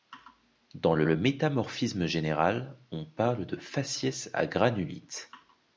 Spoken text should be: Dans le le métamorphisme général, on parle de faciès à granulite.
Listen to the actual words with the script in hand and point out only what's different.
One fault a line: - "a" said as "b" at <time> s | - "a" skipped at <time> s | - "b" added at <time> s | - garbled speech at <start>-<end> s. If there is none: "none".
none